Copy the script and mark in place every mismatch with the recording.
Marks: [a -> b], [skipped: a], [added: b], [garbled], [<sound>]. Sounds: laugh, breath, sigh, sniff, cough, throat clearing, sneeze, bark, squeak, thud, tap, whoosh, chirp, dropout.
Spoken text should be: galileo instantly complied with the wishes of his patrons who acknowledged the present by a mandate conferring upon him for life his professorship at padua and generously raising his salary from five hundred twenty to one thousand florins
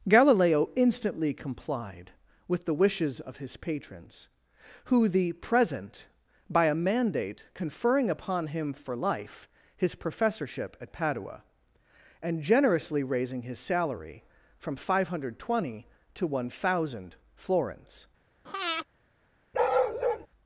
galileo instantly complied with the wishes of his patrons who [skipped: acknowledged] the present by a mandate conferring upon him for life his professorship at padua and generously raising his salary from five hundred twenty to one thousand florins [breath] [bark]